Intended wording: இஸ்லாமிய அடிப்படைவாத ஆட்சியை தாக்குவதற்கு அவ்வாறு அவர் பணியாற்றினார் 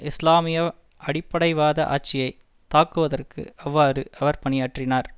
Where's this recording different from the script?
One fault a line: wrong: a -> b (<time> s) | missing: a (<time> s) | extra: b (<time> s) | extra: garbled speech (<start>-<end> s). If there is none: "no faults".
no faults